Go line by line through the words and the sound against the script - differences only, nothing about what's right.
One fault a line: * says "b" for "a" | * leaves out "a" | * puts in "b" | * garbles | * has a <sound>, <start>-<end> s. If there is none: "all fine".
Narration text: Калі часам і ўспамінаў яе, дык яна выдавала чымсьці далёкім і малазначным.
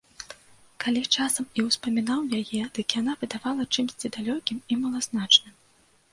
all fine